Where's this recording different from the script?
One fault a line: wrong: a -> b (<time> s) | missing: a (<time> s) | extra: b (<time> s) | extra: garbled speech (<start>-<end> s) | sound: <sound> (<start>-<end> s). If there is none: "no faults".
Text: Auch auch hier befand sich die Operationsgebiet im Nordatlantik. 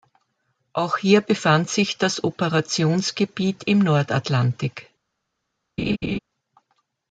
missing: auch (1.0 s)
wrong: die -> das (2.0 s)
sound: laugh (5.8-6.2 s)